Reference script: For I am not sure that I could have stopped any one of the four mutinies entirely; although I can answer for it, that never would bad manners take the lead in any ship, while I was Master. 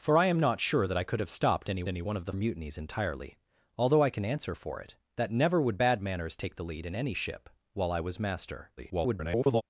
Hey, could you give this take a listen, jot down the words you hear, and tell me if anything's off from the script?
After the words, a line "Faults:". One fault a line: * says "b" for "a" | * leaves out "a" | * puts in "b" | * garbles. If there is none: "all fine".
For I am not sure that I could have stopped any any one of the mutinies entirely; although I can answer for it, that never would bad manners take the lead in any ship, while I was Master. [garbled]
Faults:
* puts in "any"
* leaves out "four"
* garbles